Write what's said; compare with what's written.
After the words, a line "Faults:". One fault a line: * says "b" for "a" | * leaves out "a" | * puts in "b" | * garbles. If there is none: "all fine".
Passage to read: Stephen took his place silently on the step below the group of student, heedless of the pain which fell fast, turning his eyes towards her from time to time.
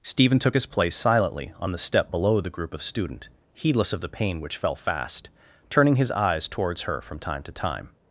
Stephen took his place silently on the step below the group of student, heedless of the pain which fell fast, turning his eyes towards her from time to time.
Faults:
all fine